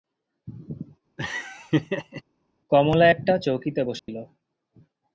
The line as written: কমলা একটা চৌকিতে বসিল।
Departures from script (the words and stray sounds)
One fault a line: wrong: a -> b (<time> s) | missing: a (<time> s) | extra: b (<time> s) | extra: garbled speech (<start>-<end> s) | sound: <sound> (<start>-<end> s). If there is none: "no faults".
sound: laugh (1.2-2.2 s)
sound: dropout (4.0-4.1 s)